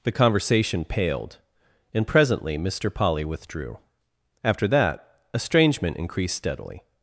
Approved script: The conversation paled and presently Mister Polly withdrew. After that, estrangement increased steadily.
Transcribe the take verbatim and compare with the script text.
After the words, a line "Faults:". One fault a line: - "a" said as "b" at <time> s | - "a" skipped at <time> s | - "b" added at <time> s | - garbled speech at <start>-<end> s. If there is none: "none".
The conversation paled and presently Mister Polly withdrew. After that, estrangement increased steadily.
Faults:
none